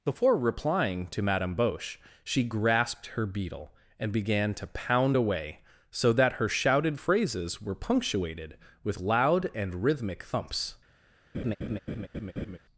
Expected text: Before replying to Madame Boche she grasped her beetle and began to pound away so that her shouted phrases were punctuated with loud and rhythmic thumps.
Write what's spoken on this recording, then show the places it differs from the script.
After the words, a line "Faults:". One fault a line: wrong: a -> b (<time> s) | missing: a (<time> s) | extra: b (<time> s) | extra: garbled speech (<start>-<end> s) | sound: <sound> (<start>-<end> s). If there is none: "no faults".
Before replying to Madame Boche she grasped her beetle and began to pound away so that her shouted phrases were punctuated with loud and rhythmic thumps.
Faults:
sound: laugh (11.3-12.6 s)